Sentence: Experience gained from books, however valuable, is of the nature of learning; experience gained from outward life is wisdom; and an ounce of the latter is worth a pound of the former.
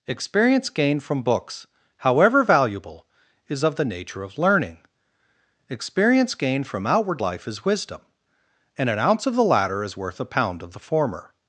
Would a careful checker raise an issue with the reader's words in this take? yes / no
no